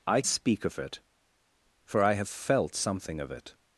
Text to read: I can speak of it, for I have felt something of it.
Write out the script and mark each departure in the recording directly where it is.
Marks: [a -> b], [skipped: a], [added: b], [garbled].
I [skipped: can] speak of it, for I have felt something of it.